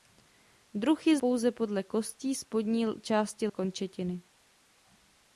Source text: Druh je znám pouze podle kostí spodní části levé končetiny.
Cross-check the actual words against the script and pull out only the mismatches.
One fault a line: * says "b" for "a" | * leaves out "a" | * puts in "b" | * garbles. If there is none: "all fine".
* leaves out "znám"
* leaves out "levé"